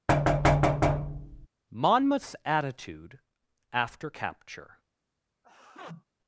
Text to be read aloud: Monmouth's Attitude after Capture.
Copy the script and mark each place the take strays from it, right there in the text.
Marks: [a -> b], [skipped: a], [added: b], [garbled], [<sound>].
[thud] Monmouth's Attitude after Capture. [sneeze]